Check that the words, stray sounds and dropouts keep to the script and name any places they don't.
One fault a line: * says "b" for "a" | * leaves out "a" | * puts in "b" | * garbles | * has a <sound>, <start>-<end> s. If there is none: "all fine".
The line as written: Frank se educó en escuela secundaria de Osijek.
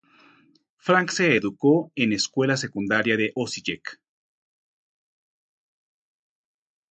all fine